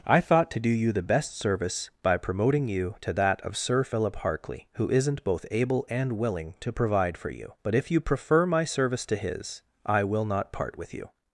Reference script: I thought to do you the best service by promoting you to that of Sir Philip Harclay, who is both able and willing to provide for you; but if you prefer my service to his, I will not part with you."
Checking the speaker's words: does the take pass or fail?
fail